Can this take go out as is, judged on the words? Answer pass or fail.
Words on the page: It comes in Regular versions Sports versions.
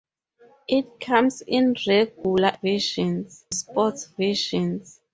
pass